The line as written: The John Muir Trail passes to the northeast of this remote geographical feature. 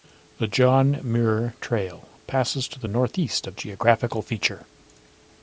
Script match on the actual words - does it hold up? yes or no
no